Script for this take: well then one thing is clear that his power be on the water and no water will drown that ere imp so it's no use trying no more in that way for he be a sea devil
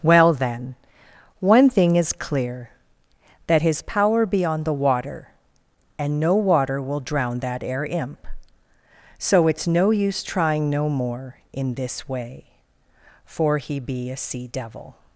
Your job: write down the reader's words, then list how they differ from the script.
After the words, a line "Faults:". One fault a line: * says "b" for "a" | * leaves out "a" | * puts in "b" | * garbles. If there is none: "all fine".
well then one thing is clear that his power be on the water and no water will drown that ere imp so it's no use trying no more in this way for he be a sea devil
Faults:
* says "this" for "that"